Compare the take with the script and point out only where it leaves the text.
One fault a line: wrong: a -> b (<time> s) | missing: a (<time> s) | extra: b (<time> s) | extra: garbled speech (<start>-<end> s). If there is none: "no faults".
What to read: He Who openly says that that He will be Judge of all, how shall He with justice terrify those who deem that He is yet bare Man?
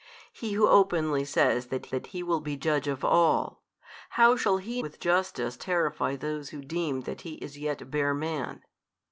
no faults